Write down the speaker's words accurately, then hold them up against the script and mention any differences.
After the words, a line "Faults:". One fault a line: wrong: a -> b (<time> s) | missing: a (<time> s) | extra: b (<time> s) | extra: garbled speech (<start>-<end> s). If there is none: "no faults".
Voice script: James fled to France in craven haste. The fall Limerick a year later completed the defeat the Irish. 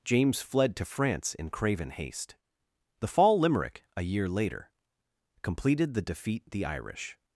James fled to France in craven haste. The fall Limerick a year later completed the defeat the Irish.
Faults:
no faults